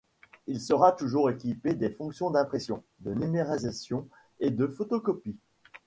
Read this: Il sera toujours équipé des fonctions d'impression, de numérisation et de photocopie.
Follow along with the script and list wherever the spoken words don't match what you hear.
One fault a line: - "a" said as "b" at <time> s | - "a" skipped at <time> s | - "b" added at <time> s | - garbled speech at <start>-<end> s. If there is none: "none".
none